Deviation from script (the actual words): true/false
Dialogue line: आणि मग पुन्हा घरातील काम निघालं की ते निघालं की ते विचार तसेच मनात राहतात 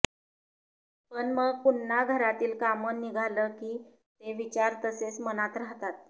true